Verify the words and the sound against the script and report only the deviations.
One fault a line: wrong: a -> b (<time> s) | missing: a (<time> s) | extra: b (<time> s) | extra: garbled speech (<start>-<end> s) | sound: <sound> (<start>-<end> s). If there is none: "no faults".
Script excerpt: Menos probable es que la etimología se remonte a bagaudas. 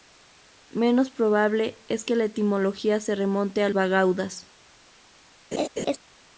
sound: laugh (5.5-6.0 s)